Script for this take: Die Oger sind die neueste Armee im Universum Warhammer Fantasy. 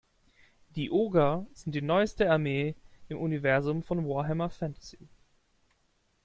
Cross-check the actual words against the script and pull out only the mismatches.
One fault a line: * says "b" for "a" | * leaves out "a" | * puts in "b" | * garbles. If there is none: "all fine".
* puts in "von"